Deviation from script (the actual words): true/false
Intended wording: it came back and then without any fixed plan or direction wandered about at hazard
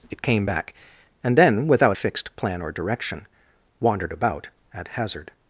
true